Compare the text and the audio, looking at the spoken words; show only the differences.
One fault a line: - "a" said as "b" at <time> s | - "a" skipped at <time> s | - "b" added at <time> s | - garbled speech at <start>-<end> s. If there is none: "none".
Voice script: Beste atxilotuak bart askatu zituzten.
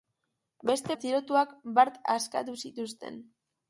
none